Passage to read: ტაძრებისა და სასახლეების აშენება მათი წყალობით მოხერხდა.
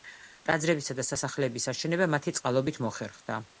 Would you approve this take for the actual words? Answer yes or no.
yes